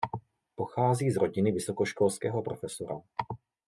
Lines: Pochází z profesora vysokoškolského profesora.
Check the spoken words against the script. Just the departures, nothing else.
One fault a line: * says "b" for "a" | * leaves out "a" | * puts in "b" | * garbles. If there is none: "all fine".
* says "rodiny" for "profesora"